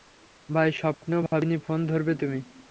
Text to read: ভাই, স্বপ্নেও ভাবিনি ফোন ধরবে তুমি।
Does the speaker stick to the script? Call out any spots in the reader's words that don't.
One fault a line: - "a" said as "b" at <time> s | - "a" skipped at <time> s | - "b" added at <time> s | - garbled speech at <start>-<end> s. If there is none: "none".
none